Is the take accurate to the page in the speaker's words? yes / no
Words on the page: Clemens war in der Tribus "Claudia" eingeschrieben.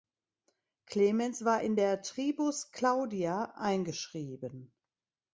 yes